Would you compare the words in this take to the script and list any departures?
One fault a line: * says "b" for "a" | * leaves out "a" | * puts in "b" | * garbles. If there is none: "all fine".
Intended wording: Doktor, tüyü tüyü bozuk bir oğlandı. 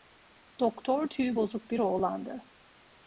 * leaves out "tüyü"